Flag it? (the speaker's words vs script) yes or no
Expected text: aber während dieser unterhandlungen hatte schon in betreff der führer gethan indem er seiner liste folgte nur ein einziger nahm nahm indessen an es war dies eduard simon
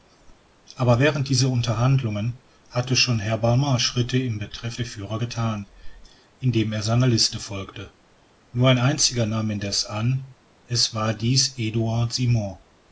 yes